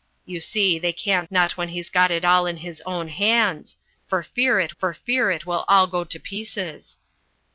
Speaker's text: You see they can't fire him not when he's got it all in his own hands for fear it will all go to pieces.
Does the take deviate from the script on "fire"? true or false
true